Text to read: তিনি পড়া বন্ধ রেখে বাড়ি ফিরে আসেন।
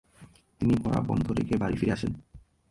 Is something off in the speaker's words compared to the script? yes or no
no